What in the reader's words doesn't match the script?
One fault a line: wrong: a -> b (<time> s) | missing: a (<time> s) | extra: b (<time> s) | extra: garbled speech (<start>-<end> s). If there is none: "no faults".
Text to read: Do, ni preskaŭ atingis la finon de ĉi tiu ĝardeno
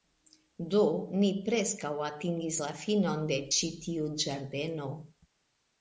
no faults